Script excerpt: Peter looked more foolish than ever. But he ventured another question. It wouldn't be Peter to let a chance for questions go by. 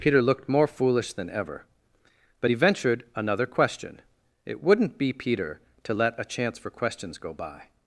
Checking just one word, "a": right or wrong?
right